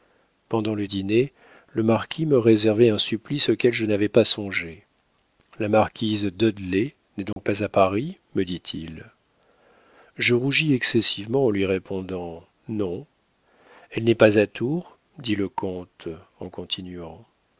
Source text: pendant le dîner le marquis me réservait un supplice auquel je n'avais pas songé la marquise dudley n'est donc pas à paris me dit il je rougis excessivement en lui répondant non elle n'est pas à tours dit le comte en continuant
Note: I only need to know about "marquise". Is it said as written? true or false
true